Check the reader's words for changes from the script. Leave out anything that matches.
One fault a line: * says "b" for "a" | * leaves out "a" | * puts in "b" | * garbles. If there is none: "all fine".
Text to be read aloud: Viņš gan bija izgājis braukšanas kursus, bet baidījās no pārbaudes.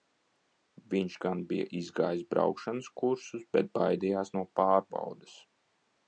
all fine